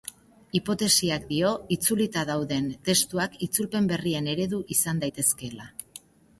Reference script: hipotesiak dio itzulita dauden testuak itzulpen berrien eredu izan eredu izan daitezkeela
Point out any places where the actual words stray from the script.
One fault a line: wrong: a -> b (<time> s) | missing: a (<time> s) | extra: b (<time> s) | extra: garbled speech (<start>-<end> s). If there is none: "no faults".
missing: eredu izan (5.1 s)